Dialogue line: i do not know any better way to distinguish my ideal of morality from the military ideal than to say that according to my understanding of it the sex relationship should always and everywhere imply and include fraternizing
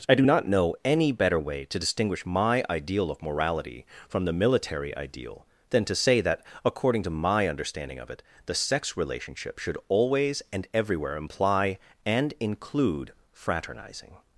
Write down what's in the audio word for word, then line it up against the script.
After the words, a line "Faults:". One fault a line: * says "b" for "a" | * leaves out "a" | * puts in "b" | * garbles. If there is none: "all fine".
i do not know any better way to distinguish my ideal of morality from the military ideal than to say that according to my understanding of it the sex relationship should always and everywhere imply and include fraternizing
Faults:
all fine